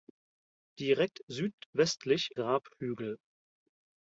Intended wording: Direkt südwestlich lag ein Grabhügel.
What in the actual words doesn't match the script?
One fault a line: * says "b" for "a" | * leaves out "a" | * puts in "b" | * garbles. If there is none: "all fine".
* leaves out "lag ein"